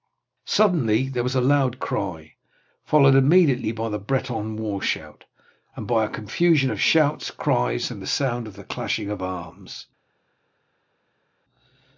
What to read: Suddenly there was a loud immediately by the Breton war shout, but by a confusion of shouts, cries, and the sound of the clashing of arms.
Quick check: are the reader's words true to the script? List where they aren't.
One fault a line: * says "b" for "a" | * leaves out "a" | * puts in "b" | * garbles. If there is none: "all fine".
* puts in "cry followed"
* says "and" for "but"